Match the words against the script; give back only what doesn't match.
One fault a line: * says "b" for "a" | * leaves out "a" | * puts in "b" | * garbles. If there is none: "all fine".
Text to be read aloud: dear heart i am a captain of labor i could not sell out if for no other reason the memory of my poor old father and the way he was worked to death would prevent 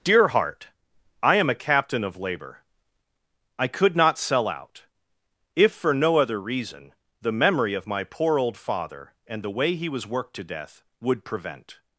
all fine